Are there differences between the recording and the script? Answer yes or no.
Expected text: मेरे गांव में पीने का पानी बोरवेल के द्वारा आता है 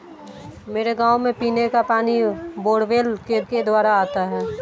yes